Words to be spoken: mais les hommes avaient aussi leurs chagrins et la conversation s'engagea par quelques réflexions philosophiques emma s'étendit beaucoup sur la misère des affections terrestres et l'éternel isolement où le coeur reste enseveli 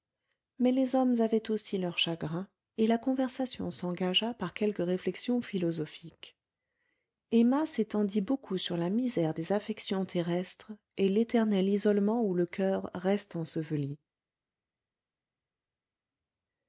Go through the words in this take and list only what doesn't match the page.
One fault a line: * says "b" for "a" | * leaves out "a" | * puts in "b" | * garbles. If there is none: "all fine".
all fine